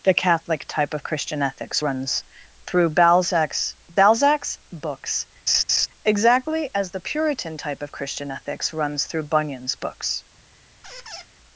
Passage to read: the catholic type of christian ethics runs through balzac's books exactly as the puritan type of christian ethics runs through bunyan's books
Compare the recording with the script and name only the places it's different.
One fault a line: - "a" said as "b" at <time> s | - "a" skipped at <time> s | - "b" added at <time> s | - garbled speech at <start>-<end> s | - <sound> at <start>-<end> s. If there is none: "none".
- "balzac's" added at 3.9 s
- laugh at 5.5-5.9 s
- squeak at 10.8-11.3 s